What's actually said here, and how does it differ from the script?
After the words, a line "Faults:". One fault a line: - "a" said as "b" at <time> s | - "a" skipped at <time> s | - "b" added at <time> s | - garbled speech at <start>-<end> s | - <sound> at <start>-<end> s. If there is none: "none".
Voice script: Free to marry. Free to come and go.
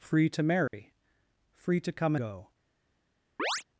Free to marry. Free to come go.
Faults:
- dropout at 0.7-0.7 s
- "and" skipped at 2.2 s
- chirp at 3.4-3.6 s